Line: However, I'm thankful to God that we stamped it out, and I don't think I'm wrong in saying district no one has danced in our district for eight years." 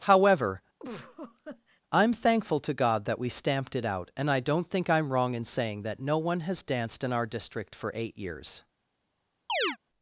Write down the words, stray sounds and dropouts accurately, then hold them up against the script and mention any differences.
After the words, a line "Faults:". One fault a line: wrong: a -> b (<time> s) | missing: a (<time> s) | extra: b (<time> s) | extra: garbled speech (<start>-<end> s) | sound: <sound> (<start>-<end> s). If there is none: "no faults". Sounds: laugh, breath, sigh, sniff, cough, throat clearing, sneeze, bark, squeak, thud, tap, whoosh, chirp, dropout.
However, I'm thankful to God that we stamped it out, and I don't think I'm wrong in saying that no one has danced in our district for eight years."
Faults:
sound: laugh (0.8-1.8 s)
wrong: district -> that (5.8 s)
sound: chirp (9.5-9.8 s)